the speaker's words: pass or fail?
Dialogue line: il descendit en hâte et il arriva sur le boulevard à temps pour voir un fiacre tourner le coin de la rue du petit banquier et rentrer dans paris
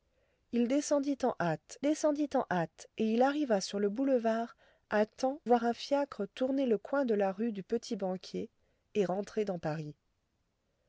fail